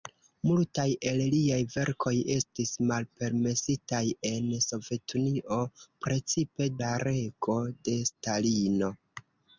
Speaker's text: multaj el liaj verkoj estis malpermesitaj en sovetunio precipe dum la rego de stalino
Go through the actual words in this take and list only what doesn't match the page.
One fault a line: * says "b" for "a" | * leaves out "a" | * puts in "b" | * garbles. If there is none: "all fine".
* leaves out "dum"